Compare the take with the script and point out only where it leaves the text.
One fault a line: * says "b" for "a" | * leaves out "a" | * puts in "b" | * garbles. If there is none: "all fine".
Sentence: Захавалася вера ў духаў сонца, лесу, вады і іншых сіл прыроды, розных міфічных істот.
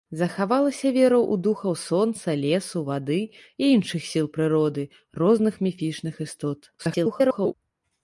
* garbles